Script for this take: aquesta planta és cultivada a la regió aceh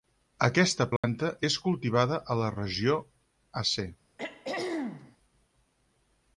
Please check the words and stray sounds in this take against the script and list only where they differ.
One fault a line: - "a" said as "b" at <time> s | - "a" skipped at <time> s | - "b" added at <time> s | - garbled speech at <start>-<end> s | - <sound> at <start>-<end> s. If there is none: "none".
- dropout at 1.0-1.0 s
- throat clearing at 4.2-5.2 s